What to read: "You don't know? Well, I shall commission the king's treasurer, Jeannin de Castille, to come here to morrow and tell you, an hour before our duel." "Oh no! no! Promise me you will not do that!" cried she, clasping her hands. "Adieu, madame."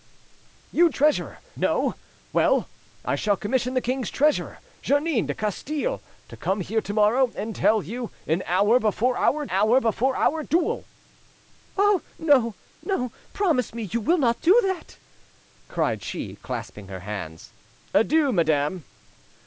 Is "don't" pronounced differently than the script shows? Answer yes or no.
yes